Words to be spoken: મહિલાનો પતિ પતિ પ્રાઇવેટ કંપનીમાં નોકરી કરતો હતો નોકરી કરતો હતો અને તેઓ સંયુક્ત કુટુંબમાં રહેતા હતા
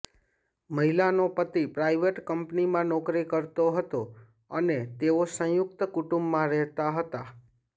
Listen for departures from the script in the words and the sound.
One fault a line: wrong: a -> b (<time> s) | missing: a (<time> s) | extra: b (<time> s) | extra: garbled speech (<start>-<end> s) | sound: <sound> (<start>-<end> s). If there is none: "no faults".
missing: પતિ (1.6 s)
missing: નોકરી કરતો હતો (4.0 s)